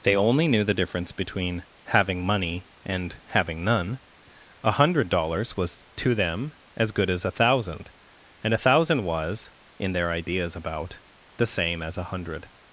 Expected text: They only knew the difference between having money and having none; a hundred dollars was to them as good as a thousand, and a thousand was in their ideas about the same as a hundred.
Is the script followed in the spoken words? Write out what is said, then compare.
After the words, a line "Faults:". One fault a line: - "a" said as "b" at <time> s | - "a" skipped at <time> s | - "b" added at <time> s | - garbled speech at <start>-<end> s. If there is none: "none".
They only knew the difference between having money and having none; a hundred dollars was to them as good as a thousand, and a thousand was in their ideas about the same as a hundred.
Faults:
none